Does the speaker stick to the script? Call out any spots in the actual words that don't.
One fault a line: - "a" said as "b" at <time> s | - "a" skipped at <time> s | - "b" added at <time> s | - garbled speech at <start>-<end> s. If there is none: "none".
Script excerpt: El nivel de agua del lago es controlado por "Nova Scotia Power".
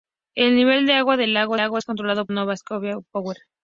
- "lago" added at 1.6 s
- "por" skipped at 2.3 s